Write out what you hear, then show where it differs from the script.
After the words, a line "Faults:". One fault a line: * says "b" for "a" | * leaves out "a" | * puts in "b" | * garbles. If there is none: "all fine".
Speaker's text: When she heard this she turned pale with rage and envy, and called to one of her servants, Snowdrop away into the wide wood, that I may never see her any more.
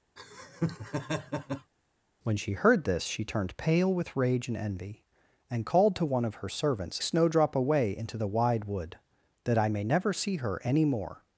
When she heard this she turned pale with rage and envy, and called to one of her servants, Snowdrop away into the wide wood, that I may never see her any more.
Faults:
all fine